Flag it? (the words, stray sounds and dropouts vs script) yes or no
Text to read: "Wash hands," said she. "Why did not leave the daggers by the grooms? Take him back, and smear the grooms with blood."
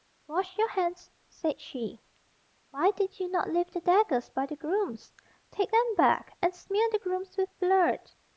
yes